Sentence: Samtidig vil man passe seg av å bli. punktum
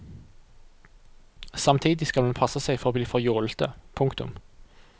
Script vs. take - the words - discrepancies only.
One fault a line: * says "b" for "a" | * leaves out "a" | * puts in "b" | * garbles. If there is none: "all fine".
* says "skal" for "vil"
* says "for" for "av"
* puts in "for jålete"